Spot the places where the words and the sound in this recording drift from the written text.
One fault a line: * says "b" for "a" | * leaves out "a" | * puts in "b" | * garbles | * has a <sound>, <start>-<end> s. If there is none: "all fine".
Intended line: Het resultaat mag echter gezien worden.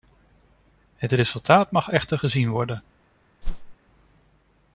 * has a whoosh, 3.4-3.8 s